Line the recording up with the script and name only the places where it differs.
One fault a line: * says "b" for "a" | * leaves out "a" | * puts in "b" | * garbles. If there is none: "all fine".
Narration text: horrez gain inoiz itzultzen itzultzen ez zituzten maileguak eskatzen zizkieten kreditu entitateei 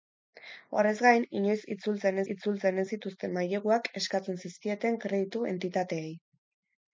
all fine